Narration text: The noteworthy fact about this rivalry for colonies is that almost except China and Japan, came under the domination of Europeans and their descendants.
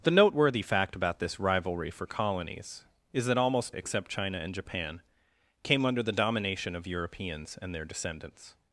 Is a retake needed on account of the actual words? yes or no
no